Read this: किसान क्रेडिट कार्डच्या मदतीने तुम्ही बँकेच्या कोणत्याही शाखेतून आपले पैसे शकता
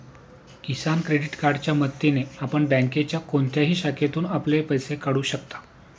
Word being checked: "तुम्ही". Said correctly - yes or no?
no